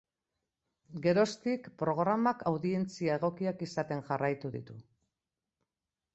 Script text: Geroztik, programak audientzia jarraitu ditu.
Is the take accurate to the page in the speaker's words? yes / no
no